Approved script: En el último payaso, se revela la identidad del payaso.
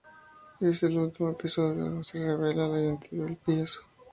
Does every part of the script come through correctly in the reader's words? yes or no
no